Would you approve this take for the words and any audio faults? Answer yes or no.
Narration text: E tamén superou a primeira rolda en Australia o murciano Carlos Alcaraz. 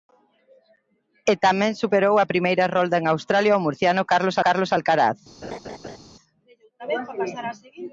no